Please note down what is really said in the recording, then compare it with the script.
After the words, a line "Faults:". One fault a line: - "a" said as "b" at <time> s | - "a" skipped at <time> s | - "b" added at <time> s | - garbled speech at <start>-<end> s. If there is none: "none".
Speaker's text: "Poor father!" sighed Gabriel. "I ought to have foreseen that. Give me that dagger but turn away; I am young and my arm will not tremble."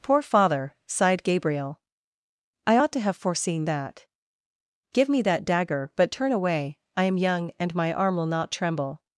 "Poor father!" sighed Gabriel. "I ought to have foreseen that. Give me that dagger but turn away; I am young and my arm will not tremble."
Faults:
none